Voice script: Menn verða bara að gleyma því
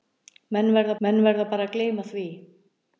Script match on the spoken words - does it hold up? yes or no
no